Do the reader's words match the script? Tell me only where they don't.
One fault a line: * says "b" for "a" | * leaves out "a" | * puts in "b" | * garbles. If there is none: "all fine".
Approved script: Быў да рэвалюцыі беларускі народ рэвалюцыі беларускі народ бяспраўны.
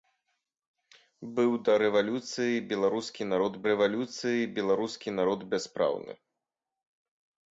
all fine